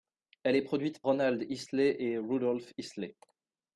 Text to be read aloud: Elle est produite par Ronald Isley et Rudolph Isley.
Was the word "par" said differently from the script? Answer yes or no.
yes